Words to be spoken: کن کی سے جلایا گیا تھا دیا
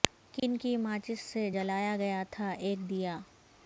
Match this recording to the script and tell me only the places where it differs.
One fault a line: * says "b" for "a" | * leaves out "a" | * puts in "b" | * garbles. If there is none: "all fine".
* puts in "ماچس"
* puts in "ایک"